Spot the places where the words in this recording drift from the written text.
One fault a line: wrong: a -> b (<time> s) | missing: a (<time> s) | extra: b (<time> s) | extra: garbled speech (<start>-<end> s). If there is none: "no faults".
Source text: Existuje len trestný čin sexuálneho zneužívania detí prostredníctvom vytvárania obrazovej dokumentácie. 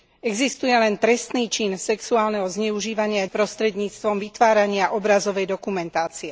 missing: detí (3.2 s)